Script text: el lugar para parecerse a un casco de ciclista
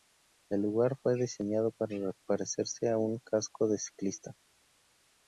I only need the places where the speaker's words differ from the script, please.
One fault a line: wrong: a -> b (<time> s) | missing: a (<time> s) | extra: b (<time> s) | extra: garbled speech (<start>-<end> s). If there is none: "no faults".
extra: fue diseñado (1.0 s)